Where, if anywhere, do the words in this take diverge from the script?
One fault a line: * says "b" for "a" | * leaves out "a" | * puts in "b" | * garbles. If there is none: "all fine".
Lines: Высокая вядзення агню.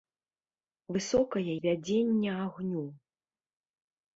all fine